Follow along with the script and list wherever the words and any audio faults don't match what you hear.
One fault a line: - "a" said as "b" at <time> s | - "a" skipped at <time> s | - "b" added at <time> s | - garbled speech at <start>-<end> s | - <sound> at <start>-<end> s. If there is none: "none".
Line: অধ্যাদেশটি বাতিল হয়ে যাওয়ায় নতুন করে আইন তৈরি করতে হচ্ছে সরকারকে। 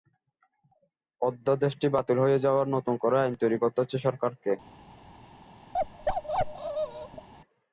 - bark at 5.7-7.3 s